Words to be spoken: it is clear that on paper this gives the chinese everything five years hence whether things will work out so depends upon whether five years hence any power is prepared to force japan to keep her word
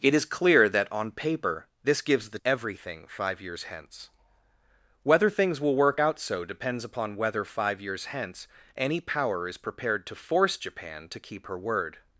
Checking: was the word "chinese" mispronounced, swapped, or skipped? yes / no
yes